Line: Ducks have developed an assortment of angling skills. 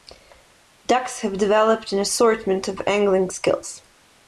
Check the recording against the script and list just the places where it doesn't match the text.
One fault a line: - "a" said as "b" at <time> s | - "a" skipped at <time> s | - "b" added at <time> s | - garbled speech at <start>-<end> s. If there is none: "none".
none